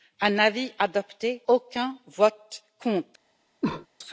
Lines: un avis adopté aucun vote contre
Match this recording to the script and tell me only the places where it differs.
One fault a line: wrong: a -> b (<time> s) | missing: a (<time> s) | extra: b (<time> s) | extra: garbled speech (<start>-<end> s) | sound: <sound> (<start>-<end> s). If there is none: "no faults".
sound: cough (3.6-3.9 s)